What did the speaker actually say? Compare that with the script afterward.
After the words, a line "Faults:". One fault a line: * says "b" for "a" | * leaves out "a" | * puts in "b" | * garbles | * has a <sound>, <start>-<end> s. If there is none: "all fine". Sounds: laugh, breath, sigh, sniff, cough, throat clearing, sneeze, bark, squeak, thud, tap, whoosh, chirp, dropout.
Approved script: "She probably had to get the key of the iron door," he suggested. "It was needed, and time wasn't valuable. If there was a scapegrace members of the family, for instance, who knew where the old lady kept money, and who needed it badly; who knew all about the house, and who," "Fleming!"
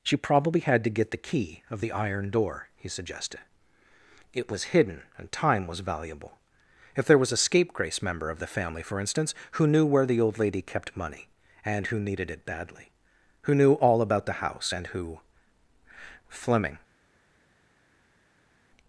"She probably had to get the key of the iron door," he suggested. "It was hidden, and time was valuable. If there was a scapegrace member of the family, for instance, who knew where the old lady kept money, and who needed it badly; who knew all about the house, and who," "Fleming!"
Faults:
* says "hidden" for "needed"
* says "was" for "wasn't"
* says "member" for "members"